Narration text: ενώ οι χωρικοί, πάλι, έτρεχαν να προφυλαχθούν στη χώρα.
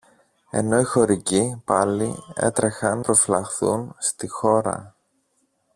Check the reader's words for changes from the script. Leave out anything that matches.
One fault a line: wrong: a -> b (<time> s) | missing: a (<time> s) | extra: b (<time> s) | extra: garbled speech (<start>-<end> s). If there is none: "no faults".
missing: να (3.0 s)